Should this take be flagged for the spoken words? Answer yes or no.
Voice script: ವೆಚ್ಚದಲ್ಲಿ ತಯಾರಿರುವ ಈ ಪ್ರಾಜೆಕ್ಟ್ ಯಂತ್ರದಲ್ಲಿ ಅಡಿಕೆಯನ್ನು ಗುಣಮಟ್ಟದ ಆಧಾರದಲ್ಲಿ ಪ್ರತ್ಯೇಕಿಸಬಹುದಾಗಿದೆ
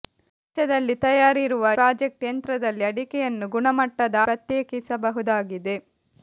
yes